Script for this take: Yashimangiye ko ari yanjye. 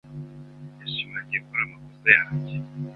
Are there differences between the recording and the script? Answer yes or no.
yes